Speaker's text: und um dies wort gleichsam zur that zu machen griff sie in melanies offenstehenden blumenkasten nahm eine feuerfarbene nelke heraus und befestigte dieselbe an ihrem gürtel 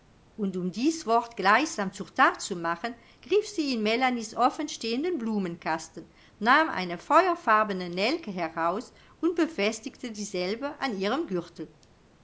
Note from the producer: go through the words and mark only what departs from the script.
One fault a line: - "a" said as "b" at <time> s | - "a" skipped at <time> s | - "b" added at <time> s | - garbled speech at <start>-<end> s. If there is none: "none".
none